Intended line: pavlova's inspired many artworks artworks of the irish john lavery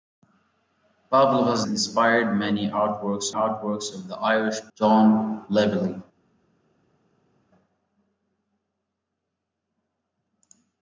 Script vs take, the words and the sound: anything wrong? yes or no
no